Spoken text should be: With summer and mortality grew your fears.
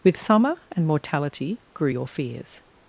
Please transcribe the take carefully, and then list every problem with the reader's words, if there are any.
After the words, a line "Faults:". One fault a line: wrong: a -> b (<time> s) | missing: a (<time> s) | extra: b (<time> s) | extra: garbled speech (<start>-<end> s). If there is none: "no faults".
With summer and mortality grew your fears.
Faults:
no faults